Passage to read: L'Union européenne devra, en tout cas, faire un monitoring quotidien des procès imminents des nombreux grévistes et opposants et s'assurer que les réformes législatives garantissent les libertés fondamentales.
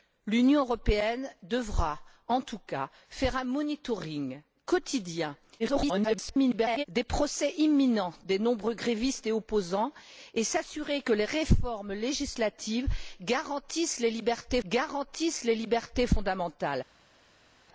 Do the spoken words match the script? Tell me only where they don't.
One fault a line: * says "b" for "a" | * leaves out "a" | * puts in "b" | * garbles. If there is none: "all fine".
* garbles
* puts in "garantissent les libertés"